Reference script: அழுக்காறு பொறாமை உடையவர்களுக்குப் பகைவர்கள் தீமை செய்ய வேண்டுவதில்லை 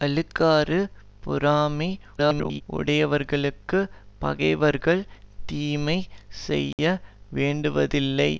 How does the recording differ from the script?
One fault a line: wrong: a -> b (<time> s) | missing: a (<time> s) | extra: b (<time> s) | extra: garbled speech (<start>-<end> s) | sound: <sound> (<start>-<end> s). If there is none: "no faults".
extra: garbled speech (2.2-2.6 s)
sound: dropout (6.7-6.8 s)